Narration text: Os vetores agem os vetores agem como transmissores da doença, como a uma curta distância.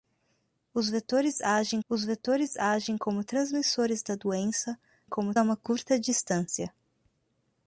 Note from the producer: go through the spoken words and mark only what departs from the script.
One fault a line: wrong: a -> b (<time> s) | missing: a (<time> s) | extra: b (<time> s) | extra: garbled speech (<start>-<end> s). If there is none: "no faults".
no faults